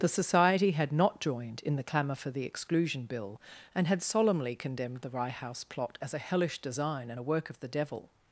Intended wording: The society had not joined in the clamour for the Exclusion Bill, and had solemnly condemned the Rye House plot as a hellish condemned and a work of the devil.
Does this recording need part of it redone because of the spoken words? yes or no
yes